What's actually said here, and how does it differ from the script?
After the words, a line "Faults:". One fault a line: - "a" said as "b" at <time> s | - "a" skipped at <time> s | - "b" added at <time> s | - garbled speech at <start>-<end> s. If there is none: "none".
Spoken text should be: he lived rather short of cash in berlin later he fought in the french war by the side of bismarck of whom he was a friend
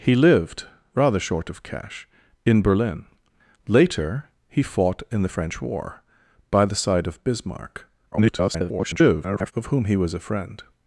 he lived rather short of cash in berlin later he fought in the french war by the side of bismarck [garbled] of whom he was a friend
Faults:
- garbled speech at 8.1-9.5 s